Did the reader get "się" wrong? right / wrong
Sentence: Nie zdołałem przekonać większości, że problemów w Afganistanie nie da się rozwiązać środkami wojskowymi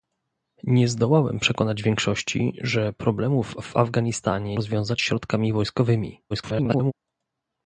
wrong